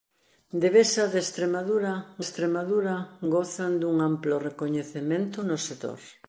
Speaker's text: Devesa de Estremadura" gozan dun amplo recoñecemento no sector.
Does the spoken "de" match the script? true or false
true